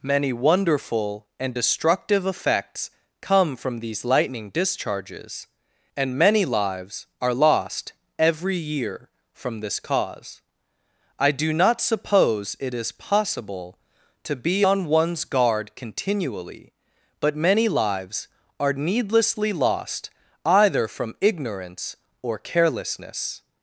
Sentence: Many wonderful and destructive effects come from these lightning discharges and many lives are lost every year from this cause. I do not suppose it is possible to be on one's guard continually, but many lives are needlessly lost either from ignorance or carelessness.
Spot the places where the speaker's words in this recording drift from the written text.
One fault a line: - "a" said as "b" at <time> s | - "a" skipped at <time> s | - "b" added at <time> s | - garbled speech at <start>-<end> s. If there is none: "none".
none